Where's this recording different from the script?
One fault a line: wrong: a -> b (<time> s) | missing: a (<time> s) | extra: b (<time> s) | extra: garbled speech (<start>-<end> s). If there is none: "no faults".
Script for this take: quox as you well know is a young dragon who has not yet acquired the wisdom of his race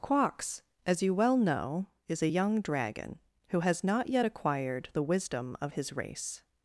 no faults